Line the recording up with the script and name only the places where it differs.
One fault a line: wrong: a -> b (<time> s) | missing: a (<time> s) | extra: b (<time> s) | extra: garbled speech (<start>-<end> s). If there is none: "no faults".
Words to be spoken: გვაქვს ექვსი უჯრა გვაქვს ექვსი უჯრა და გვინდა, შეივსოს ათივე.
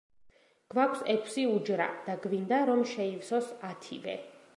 missing: გვაქვს ექვსი უჯრა (1.9 s)
extra: რომ (2.7 s)